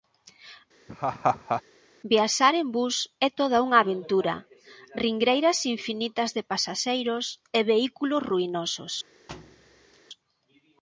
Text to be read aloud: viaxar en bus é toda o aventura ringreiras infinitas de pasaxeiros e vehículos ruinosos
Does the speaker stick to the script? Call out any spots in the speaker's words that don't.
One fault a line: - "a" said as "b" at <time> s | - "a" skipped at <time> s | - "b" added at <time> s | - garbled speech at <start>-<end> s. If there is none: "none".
- "o" said as "unha" at 3.7 s